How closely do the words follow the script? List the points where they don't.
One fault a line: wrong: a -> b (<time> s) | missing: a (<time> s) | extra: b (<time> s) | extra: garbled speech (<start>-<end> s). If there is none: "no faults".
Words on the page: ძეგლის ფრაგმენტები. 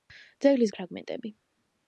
no faults